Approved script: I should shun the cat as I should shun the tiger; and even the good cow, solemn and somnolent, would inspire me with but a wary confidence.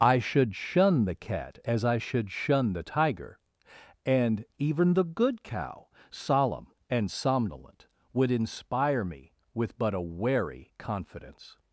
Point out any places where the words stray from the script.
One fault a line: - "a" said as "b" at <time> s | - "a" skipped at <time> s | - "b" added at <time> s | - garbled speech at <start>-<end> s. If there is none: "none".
none